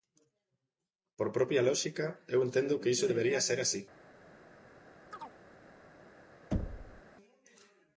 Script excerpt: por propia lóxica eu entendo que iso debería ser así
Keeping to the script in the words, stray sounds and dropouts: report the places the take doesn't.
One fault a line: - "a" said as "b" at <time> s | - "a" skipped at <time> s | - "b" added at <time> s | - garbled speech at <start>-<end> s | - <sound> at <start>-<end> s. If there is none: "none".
- chirp at 5.1-5.4 s
- thud at 6.5-7.0 s